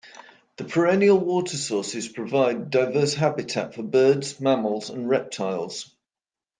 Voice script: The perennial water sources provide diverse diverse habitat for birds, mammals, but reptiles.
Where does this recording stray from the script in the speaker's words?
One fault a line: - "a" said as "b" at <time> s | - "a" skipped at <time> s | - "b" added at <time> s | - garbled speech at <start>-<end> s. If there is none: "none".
- "diverse" skipped at 3.1 s
- "but" said as "and" at 4.9 s